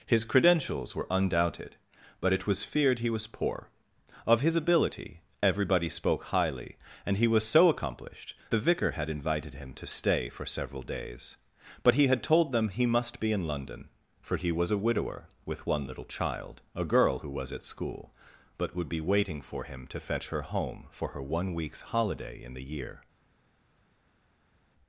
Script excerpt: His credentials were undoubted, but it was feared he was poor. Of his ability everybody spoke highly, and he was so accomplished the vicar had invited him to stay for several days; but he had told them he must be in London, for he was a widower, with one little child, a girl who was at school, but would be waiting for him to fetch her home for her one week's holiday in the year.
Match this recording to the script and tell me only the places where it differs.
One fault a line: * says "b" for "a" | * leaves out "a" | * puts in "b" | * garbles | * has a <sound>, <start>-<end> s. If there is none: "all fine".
all fine